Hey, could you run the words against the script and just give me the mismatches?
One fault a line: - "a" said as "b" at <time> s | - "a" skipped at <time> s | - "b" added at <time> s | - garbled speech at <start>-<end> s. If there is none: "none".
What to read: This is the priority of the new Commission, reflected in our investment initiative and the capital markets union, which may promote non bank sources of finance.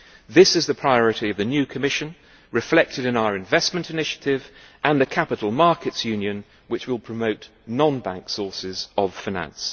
- "may" said as "will" at 6.9 s